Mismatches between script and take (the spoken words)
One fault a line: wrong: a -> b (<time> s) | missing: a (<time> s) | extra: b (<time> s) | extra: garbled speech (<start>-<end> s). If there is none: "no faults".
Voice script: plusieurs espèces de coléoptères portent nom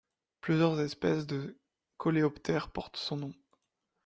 extra: son (3.0 s)